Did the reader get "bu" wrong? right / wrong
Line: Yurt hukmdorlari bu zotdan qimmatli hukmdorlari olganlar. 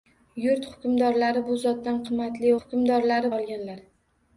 right